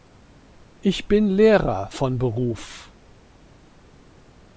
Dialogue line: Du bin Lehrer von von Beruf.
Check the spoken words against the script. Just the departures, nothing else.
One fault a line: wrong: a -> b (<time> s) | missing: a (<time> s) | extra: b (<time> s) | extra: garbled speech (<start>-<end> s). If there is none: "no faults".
wrong: Du -> Ich (0.8 s)
missing: von (2.2 s)